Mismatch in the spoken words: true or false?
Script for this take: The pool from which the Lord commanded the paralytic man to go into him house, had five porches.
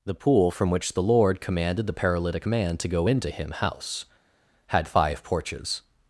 false